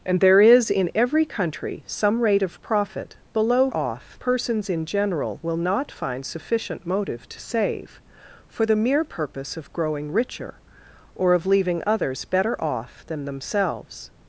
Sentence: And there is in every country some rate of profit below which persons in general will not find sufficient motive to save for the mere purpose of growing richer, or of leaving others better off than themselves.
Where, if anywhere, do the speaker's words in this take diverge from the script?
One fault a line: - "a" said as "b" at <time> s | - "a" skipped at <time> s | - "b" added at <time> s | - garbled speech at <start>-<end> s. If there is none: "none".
- "which" said as "off" at 3.7 s